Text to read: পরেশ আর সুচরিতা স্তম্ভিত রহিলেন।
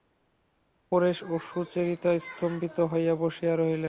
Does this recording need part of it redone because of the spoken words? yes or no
yes